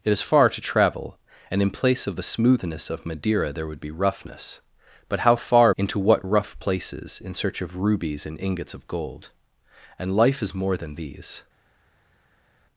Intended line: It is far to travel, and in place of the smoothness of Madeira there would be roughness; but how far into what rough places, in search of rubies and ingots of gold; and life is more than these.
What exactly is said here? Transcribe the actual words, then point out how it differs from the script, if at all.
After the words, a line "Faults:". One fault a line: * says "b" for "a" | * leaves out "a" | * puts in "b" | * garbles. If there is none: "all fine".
It is far to travel, and in place of the smoothness of Madeira there would be roughness; but how far into what rough places, in search of rubies and ingots of gold; and life is more than these.
Faults:
all fine